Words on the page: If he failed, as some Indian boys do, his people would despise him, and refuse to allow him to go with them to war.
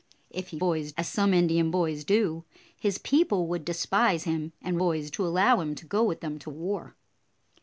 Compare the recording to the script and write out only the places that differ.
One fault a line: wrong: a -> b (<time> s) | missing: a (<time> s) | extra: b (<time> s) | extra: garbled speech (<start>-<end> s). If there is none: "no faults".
wrong: failed -> boys (0.6 s)
wrong: refuse -> boys (4.8 s)